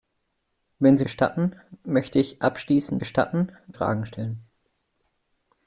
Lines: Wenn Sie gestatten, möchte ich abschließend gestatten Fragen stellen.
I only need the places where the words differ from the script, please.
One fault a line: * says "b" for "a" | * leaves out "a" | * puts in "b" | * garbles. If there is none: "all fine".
all fine